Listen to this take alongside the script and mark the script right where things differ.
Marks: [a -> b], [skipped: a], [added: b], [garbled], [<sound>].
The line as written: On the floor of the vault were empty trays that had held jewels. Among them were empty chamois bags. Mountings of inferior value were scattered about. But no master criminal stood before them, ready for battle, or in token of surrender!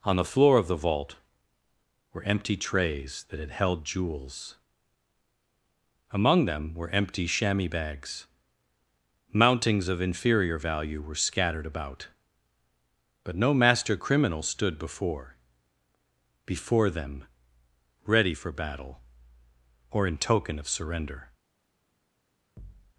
On the floor of the vault were empty trays that had held jewels. Among them were empty chamois bags. Mountings of inferior value were scattered about. But no master criminal stood before [added: before] them, ready for battle, or in token of surrender! [thud]